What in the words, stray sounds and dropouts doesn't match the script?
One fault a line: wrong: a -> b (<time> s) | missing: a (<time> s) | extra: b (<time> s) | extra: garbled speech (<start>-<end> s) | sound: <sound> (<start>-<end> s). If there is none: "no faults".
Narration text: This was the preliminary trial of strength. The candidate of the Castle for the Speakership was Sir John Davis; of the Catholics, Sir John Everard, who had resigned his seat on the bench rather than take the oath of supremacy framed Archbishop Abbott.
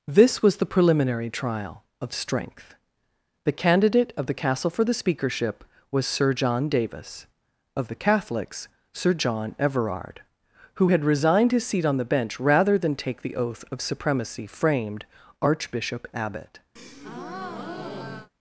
sound: breath (16.8-18.3 s)